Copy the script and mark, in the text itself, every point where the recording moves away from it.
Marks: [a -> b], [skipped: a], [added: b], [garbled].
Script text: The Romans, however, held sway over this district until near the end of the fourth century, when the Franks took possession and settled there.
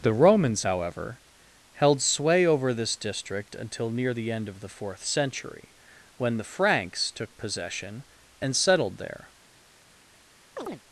The Romans, however, held sway over this district until near the end of the fourth century, when the Franks took possession and settled there.